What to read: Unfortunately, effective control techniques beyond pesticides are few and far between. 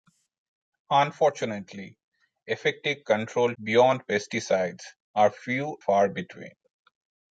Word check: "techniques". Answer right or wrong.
wrong